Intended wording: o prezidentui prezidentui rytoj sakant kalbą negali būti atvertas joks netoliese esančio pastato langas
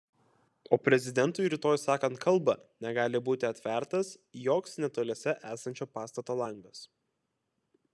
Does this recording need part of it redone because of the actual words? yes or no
yes